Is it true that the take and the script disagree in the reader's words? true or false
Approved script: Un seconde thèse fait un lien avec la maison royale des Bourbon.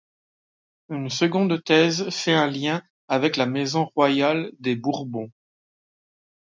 true